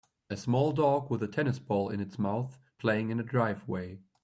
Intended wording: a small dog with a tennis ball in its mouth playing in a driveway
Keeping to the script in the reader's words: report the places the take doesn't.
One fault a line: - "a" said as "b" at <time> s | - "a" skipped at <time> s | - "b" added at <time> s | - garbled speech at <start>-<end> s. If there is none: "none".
none